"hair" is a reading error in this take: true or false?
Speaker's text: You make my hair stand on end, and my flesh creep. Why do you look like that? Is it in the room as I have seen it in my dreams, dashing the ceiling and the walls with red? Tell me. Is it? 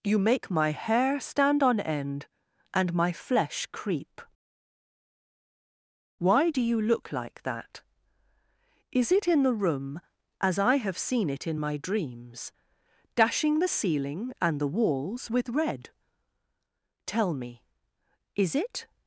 false